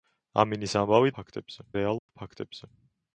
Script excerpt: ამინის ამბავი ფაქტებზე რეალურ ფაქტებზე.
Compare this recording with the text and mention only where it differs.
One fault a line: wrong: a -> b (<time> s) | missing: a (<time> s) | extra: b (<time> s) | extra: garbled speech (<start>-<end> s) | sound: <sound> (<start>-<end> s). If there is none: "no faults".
sound: dropout (2.0-2.1 s)